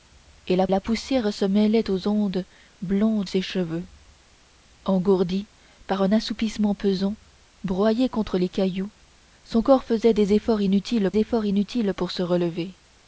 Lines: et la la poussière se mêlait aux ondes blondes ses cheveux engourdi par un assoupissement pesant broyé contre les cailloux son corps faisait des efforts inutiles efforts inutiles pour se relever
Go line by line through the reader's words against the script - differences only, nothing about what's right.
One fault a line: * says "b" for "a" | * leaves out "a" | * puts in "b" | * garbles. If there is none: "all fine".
all fine